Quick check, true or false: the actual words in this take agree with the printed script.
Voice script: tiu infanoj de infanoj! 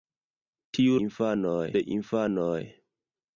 true